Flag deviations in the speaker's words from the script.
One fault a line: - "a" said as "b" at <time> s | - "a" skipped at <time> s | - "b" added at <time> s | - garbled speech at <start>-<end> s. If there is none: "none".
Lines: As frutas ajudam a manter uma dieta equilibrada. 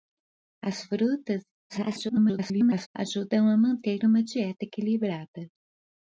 - garbled speech at 1.7-2.9 s